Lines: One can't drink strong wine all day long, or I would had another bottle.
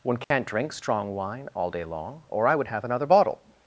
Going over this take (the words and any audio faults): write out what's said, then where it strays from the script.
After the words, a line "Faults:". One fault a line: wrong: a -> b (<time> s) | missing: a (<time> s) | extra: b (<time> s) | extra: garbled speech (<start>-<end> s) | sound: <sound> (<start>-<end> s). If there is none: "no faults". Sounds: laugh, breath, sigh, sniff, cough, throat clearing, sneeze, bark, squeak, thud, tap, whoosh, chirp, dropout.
One can't drink strong wine all day long, or I would have another bottle.
Faults:
sound: dropout (0.2-0.3 s)
wrong: had -> have (2.7 s)